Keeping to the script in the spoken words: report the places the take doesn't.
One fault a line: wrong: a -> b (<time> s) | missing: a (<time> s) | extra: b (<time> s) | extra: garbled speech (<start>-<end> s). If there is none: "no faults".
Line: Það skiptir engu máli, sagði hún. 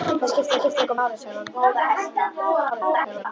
extra: skiptir (0.6 s)
extra: garbled speech (2.7-3.3 s)